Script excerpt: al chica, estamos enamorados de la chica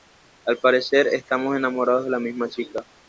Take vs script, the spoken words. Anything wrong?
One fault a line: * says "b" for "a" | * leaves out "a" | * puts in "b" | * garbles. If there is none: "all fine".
* says "parecer" for "chica"
* puts in "misma"